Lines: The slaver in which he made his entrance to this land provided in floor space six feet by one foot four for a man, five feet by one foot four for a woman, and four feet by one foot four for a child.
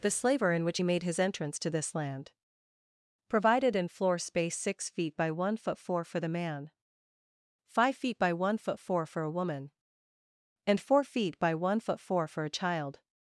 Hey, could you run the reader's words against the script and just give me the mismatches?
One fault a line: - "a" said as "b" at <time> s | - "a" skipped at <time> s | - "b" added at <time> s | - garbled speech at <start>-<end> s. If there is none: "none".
- "a" said as "the" at 6.2 s